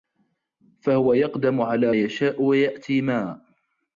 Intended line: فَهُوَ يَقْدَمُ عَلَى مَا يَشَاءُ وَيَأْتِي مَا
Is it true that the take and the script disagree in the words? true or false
true